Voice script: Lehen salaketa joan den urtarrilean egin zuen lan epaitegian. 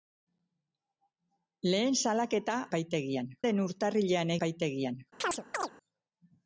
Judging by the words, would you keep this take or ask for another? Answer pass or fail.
fail